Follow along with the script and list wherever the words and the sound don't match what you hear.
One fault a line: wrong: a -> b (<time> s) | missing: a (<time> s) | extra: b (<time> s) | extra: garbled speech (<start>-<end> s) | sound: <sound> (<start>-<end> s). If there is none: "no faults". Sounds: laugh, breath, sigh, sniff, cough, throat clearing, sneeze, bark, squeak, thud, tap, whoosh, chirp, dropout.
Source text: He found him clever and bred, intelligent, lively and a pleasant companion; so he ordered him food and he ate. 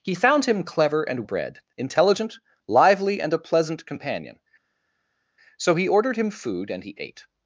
no faults